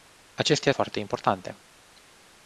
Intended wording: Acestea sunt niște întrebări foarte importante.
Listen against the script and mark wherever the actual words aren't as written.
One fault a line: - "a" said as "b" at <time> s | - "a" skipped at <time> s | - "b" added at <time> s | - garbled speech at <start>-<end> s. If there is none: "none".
- "sunt niște întrebări" skipped at 0.7 s